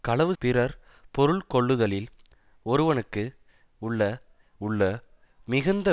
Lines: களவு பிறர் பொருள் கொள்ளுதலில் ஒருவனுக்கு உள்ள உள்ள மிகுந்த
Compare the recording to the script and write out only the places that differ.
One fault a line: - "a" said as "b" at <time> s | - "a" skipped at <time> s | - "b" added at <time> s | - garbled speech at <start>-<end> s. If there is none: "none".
none